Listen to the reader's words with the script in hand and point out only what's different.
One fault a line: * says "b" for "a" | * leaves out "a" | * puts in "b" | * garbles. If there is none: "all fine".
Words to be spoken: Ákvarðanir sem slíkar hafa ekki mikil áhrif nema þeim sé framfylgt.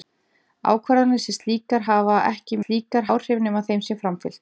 * says "slíkar" for "mikil"